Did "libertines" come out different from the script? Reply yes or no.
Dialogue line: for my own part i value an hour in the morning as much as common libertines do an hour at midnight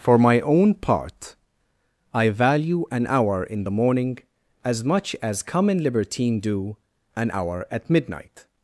yes